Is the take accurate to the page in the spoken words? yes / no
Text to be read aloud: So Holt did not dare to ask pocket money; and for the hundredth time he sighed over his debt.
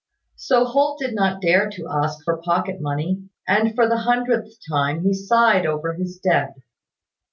no